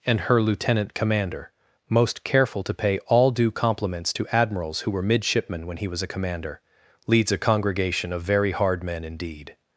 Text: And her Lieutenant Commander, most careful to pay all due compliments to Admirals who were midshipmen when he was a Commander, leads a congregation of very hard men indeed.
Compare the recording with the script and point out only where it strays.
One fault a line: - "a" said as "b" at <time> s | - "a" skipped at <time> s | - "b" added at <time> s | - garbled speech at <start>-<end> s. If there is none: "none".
none